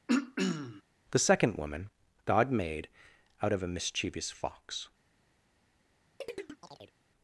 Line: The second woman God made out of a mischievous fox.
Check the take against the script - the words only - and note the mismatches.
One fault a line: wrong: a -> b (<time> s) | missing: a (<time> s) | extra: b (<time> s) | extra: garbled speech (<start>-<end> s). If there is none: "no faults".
no faults